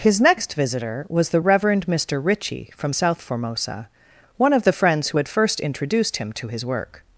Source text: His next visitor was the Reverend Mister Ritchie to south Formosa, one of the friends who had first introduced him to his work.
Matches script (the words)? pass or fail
fail